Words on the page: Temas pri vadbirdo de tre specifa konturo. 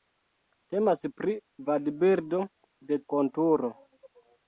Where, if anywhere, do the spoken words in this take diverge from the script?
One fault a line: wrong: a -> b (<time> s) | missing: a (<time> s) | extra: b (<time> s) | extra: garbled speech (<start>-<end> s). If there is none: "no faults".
missing: tre specifa (3.0 s)